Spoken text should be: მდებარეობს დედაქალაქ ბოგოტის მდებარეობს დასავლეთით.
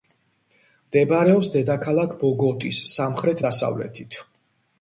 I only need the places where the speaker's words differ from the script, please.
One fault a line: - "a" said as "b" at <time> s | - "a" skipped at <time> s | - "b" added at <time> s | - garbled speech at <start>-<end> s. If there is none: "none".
- "მდებარეობს" said as "სამხრეთ" at 3.0 s